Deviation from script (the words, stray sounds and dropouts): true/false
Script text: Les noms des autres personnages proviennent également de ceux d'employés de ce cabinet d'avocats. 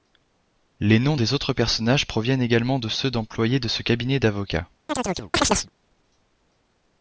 true